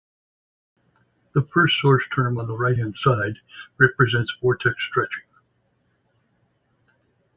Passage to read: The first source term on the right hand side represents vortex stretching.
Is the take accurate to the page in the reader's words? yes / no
yes